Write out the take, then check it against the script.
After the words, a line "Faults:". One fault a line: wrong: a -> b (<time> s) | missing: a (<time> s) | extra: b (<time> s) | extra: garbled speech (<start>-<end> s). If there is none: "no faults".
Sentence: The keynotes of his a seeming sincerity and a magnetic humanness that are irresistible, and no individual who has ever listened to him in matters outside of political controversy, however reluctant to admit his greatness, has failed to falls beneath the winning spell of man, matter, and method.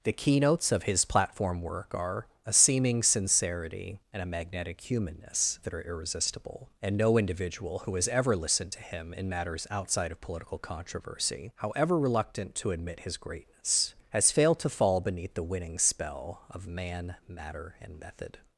The keynotes of his platform work are a seeming sincerity and a magnetic humanness that are irresistible, and no individual who has ever listened to him in matters outside of political controversy, however reluctant to admit his greatness, has failed to fall beneath the winning spell of man, matter, and method.
Faults:
extra: platform work are (1.1 s)
wrong: falls -> fall (14.7 s)